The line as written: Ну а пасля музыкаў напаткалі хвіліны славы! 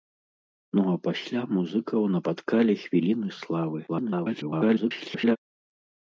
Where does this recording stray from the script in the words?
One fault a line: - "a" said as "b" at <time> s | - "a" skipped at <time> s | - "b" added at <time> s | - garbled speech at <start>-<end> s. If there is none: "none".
- garbled speech at 3.9-5.4 s